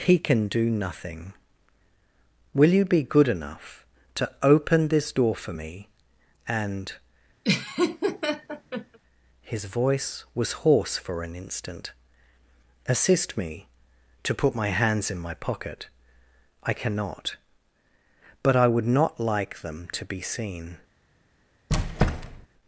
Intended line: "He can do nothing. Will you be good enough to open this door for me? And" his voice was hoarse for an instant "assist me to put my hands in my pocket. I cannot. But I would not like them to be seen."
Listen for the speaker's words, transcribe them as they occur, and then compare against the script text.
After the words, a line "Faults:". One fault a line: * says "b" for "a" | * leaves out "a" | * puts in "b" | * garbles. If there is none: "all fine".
"He can do nothing. Will you be good enough to open this door for me? And" his voice was hoarse for an instant "assist me to put my hands in my pocket. I cannot. But I would not like them to be seen."
Faults:
all fine